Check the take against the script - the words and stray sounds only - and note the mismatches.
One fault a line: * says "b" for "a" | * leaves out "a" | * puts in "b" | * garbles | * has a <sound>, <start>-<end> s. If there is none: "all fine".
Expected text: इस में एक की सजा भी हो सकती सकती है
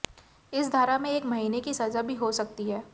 * puts in "धारा"
* puts in "महीने"
* leaves out "सकती"